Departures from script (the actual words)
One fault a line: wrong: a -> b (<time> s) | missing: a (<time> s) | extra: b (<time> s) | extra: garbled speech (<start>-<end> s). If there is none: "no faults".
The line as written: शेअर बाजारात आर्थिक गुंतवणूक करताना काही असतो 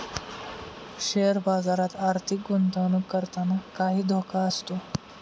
extra: धोका (4.1 s)